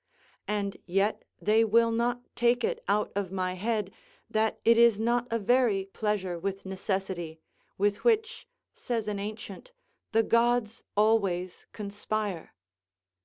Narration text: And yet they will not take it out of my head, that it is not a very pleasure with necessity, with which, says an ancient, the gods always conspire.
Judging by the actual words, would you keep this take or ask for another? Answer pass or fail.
pass